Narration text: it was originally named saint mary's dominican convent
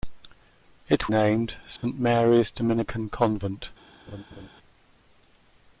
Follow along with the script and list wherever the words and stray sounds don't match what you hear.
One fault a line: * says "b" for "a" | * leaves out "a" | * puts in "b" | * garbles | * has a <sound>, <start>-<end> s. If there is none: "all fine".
* leaves out "was originally"
* has a dropout, 1.8-1.8 s
* has a laugh, 4.1-4.5 s